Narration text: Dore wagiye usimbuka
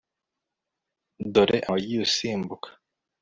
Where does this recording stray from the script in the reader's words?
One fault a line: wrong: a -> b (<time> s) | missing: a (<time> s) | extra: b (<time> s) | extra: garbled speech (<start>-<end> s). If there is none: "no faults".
no faults